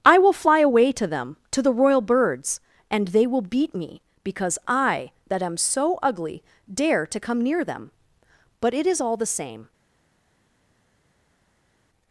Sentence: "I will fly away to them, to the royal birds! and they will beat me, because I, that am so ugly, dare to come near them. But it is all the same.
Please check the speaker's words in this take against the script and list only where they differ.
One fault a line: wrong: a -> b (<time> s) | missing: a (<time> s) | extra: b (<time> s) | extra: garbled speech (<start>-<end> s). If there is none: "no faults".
no faults